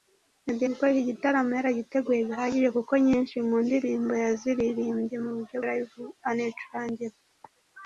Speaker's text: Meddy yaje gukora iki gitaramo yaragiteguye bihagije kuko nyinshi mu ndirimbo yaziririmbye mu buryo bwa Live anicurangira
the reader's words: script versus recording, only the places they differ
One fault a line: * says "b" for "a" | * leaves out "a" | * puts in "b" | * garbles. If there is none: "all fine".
* leaves out "yaje"
* leaves out "bwa"